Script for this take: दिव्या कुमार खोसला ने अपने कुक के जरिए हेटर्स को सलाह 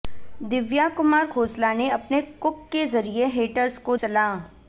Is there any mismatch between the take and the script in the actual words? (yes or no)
no